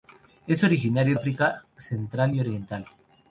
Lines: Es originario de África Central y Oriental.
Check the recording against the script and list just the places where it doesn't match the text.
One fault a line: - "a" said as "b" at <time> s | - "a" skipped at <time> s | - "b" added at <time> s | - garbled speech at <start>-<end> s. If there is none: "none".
- "de" skipped at 1.1 s